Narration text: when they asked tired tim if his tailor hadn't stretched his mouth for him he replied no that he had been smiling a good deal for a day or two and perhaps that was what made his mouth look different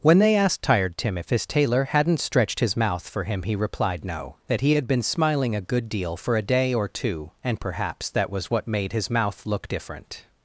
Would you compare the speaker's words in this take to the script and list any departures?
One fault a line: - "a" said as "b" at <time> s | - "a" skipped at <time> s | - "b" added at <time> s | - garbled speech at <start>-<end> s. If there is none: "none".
none